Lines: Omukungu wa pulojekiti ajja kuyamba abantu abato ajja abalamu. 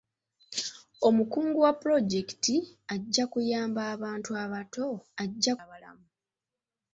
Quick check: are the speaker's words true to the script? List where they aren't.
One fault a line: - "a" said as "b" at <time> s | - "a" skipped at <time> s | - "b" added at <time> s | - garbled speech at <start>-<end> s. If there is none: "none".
none